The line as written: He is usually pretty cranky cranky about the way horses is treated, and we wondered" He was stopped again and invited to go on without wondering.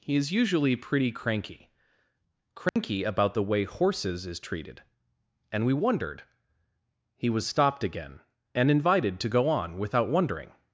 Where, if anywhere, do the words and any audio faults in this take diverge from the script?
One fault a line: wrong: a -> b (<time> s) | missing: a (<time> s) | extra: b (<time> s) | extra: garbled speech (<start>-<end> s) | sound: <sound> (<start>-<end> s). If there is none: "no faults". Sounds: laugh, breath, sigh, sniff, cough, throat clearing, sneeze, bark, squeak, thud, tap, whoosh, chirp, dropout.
sound: dropout (2.7-2.8 s)